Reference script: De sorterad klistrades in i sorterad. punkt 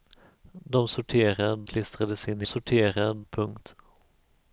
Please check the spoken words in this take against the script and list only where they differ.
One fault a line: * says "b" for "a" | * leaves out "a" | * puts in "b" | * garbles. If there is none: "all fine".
all fine